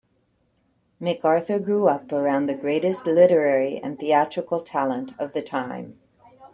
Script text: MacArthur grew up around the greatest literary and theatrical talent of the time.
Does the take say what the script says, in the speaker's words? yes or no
yes